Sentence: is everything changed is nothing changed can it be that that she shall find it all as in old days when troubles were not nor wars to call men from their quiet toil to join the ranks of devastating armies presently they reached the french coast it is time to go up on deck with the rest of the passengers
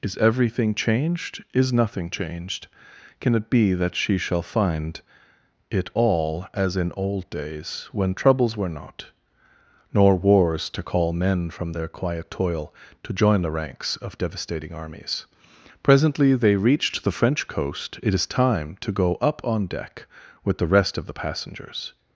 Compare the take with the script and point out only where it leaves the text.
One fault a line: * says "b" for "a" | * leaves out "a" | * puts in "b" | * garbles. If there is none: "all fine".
* leaves out "that"